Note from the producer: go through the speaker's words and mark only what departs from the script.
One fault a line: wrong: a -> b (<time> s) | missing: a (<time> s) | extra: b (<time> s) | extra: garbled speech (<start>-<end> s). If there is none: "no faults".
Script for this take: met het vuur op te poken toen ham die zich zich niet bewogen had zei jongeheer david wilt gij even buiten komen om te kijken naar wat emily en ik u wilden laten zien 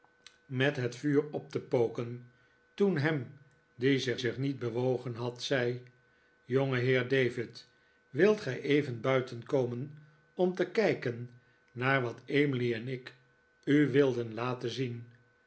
no faults